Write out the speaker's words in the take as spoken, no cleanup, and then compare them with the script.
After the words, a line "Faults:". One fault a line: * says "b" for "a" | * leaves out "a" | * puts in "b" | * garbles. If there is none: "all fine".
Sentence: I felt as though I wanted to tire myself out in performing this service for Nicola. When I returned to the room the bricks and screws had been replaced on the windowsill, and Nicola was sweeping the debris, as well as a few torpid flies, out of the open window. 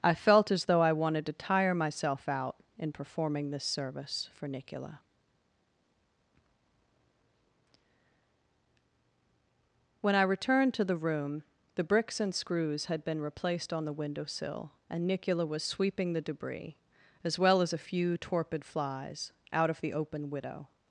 I felt as though I wanted to tire myself out in performing this service for Nicola. When I returned to the room the bricks and screws had been replaced on the windowsill, and Nicola was sweeping the debris, as well as a few torpid flies, out of the open widow.
Faults:
* says "widow" for "window"